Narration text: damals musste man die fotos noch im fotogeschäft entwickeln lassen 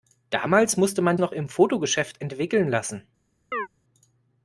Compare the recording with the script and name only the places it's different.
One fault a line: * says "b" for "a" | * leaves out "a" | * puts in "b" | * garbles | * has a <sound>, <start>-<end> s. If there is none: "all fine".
* leaves out "die fotos"
* has a chirp, 3.5-3.7 s